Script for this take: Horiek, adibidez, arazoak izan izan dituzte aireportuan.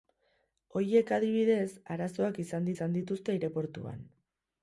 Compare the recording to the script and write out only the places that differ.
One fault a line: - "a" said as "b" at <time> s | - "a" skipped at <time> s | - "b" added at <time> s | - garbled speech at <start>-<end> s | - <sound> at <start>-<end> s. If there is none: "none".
none